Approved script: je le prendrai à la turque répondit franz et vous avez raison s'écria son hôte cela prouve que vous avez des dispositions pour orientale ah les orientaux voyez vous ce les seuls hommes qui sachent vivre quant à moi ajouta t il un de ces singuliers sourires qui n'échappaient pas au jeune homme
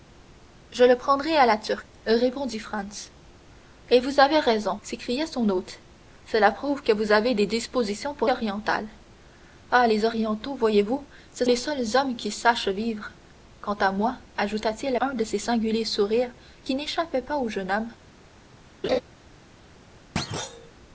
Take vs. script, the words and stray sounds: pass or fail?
fail